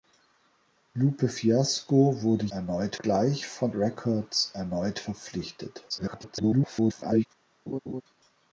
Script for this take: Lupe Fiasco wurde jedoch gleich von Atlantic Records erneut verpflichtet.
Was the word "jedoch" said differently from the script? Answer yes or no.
yes